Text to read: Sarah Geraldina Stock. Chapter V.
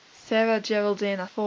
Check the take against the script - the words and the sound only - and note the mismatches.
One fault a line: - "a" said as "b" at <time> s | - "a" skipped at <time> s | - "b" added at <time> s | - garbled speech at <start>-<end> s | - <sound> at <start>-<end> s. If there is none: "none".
- "Stock Chapter" skipped at 1.3 s